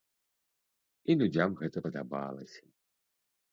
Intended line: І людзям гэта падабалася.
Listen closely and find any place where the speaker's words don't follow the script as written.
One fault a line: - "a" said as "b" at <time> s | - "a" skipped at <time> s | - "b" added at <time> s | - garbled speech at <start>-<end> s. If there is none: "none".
none